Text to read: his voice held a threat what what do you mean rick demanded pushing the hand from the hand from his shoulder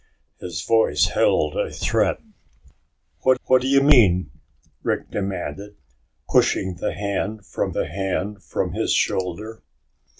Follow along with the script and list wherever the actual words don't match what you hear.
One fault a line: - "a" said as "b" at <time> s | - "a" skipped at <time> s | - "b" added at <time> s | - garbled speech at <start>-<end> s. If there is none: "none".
none